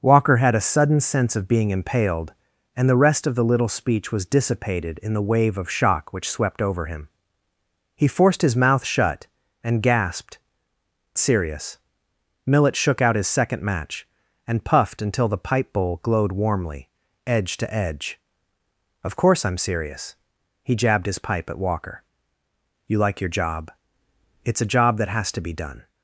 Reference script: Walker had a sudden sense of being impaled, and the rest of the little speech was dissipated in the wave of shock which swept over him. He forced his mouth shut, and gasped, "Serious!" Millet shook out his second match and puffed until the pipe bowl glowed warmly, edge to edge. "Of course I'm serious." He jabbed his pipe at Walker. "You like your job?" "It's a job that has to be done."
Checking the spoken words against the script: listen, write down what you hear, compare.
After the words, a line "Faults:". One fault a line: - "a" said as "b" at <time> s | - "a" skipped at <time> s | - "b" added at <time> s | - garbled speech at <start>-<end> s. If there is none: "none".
Walker had a sudden sense of being impaled, and the rest of the little speech was dissipated in the wave of shock which swept over him. He forced his mouth shut, and gasped, "Serious!" Millet shook out his second match and puffed until the pipe bowl glowed warmly, edge to edge. "Of course I'm serious." He jabbed his pipe at Walker. "You like your job?" "It's a job that has to be done."
Faults:
none